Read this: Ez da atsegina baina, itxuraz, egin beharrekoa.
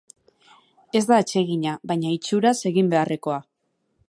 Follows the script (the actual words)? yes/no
yes